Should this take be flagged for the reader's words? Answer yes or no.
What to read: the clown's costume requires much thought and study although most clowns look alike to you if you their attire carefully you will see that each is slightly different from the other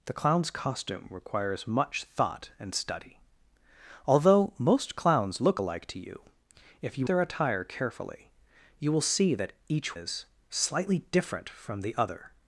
no